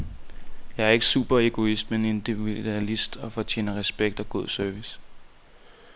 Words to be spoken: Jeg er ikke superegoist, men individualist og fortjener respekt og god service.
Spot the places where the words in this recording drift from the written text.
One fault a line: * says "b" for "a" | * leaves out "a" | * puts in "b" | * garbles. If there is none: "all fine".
all fine